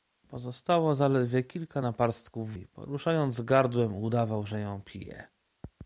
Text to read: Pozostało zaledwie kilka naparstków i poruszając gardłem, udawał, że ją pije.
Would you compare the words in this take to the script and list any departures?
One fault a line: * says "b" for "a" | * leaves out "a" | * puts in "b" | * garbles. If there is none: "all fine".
all fine